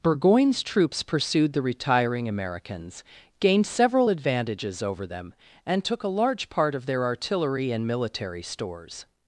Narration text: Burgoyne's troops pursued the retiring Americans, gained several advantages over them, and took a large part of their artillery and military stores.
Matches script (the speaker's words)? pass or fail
pass